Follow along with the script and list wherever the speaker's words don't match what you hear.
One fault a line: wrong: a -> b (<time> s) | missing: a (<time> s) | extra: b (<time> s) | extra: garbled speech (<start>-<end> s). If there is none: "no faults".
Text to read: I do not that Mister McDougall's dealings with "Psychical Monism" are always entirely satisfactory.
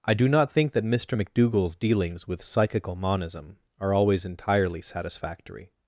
extra: think (0.5 s)